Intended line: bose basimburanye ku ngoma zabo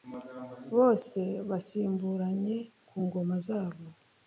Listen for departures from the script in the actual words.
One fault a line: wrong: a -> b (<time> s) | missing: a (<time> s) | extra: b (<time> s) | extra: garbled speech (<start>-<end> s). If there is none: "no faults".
no faults